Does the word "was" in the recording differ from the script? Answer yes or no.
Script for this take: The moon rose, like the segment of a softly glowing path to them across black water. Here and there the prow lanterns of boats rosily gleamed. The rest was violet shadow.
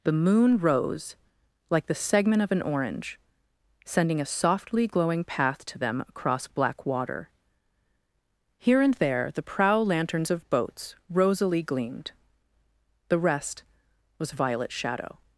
no